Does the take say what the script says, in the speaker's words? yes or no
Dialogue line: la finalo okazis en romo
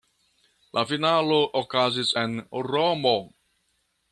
yes